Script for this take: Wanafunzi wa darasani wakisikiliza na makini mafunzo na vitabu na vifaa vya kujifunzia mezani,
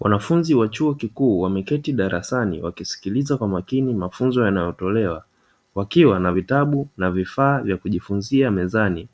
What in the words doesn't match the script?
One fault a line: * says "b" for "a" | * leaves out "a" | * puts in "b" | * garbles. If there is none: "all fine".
* puts in "chuo kikuu wameketi"
* says "kwa" for "na"
* puts in "yanayotolewa wakiwa"